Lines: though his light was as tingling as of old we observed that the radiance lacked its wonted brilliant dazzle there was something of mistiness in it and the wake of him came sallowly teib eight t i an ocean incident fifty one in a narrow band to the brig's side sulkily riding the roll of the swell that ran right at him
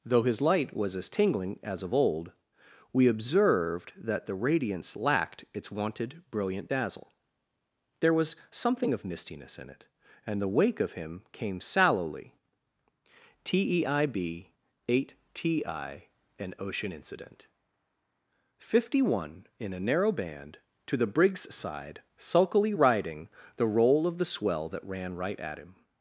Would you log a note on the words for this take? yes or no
no